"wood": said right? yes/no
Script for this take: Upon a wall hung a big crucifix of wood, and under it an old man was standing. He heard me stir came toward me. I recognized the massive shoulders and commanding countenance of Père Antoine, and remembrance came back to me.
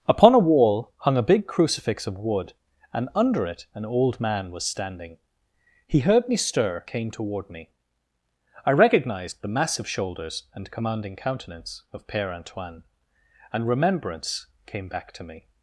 yes